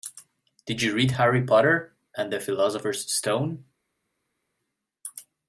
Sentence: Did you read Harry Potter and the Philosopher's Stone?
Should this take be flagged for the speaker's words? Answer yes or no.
no